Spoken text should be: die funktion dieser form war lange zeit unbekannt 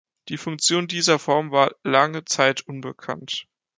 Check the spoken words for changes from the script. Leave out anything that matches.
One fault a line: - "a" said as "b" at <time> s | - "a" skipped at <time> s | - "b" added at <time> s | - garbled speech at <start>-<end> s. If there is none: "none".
none